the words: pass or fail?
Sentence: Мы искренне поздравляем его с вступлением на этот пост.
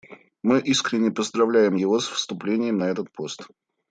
pass